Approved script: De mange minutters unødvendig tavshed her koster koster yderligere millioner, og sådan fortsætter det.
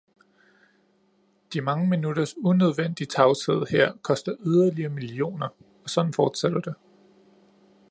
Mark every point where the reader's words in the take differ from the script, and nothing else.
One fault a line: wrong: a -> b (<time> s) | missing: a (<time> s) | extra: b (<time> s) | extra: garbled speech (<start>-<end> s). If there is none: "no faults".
missing: koster (4.3 s)